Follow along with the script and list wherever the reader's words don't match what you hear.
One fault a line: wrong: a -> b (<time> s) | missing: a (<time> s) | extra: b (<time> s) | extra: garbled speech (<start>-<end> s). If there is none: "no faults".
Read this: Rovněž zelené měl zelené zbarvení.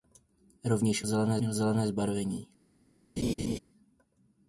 no faults